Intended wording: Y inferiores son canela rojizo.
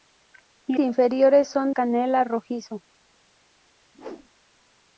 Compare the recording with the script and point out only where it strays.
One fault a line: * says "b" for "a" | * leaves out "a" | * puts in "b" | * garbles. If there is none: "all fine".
all fine